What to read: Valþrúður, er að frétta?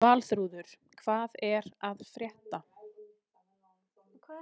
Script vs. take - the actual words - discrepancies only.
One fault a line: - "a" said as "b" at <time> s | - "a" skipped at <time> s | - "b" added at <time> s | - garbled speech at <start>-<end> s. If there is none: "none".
- "hvað" added at 1.0 s